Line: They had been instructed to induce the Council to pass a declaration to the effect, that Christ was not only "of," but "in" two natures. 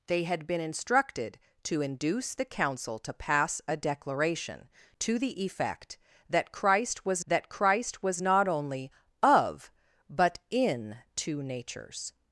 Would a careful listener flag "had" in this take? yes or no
no